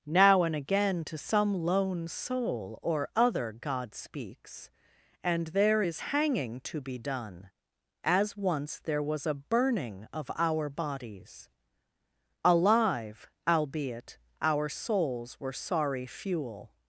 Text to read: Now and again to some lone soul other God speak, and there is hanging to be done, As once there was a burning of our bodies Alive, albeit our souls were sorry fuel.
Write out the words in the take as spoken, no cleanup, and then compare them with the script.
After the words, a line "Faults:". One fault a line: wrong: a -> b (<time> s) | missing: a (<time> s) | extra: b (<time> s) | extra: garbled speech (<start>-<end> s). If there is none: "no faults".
Now and again to some lone soul or other God speaks, and there is hanging to be done, As once there was a burning of our bodies Alive, albeit our souls were sorry fuel.
Faults:
extra: or (2.8 s)
wrong: speak -> speaks (3.9 s)